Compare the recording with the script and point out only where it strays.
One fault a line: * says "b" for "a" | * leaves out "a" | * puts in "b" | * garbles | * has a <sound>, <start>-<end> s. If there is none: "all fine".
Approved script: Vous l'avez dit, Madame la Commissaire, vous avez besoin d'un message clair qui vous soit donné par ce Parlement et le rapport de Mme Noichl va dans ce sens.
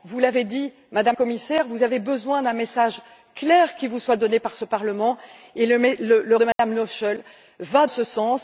* leaves out "la"
* leaves out "rapport"
* has a dropout, 6.5-6.6 s
* leaves out "dans"